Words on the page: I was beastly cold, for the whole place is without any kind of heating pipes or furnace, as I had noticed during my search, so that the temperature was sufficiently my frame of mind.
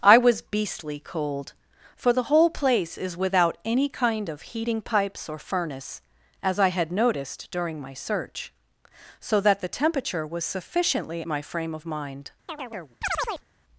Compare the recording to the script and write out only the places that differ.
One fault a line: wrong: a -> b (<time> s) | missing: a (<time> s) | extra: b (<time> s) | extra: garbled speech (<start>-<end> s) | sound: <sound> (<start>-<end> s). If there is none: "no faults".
sound: chirp (12.5-13.5 s)